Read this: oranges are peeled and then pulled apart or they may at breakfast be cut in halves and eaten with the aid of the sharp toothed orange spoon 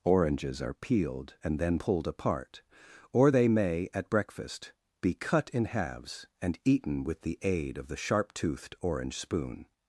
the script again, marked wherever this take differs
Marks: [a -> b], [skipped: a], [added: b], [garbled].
oranges are peeled and then pulled apart or they may at breakfast be cut in halves and eaten with the aid of the sharp toothed orange spoon